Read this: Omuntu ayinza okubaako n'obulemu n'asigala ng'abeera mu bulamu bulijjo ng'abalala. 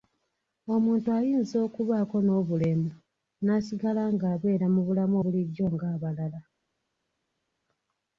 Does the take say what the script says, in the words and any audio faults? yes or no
yes